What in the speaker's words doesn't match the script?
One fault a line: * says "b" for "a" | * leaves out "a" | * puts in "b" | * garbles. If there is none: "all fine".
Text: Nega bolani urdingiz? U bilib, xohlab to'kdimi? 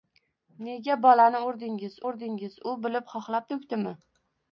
* puts in "urdingiz"